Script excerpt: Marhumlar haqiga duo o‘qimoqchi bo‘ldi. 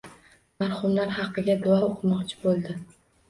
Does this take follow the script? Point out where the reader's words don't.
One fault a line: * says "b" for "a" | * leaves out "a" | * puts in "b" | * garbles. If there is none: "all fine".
all fine